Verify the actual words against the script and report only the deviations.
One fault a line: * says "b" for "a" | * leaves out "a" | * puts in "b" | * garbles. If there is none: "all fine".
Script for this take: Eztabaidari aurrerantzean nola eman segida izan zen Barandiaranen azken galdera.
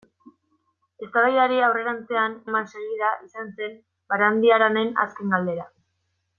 * leaves out "nola"